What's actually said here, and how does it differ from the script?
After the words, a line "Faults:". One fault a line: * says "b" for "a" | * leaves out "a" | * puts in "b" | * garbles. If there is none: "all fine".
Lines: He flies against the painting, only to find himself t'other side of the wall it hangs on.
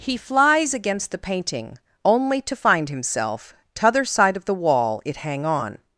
He flies against the painting, only to find himself t'other side of the wall it hang on.
Faults:
* says "hang" for "hangs"